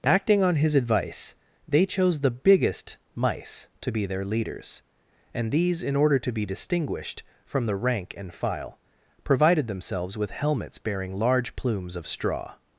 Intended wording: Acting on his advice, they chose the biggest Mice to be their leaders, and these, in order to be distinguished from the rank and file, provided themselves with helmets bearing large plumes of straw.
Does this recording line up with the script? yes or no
yes